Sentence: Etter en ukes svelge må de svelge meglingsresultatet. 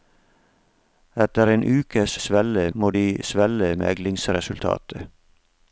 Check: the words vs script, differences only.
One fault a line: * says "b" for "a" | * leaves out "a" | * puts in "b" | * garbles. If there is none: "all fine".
all fine